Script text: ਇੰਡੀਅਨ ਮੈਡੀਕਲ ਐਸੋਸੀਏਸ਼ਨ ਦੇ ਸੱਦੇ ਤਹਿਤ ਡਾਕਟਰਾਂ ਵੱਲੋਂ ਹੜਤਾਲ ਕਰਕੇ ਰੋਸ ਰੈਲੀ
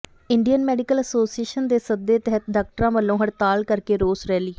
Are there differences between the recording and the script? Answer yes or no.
no